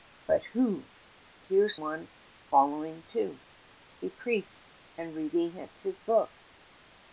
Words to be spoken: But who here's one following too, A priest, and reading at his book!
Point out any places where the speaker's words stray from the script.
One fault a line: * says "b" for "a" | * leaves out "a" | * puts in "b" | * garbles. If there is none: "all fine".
all fine